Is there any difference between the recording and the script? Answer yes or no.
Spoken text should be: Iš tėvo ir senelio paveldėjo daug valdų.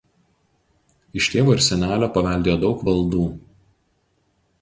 no